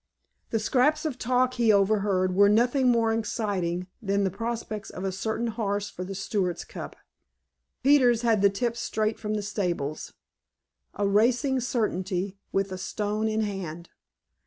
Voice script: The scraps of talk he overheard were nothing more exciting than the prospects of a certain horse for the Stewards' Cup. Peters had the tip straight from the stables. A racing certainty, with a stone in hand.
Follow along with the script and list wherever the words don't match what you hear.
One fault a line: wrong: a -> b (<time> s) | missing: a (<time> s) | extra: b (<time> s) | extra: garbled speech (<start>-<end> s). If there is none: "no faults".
no faults